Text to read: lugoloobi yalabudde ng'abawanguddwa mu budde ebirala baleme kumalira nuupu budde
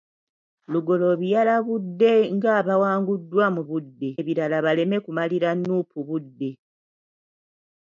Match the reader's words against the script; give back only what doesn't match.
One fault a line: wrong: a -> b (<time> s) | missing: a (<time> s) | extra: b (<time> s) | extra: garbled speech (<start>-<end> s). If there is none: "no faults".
no faults